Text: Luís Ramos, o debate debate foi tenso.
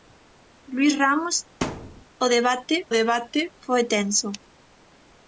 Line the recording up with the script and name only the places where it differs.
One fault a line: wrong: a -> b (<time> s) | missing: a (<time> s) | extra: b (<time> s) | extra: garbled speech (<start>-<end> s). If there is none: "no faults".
no faults